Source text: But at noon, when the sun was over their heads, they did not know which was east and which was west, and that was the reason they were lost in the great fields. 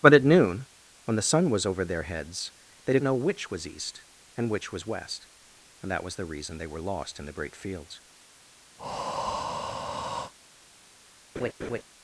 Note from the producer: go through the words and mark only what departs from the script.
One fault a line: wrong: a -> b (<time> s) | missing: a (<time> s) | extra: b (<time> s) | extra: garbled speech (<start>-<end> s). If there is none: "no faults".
missing: not (3.0 s)